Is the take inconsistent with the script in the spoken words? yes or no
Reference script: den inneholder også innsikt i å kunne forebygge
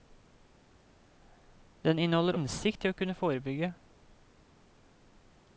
yes